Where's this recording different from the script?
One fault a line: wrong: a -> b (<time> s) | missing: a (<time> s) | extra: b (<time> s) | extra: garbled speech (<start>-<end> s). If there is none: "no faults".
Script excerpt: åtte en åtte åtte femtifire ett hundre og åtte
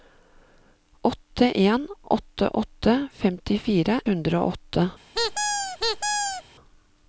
missing: ett (4.0 s)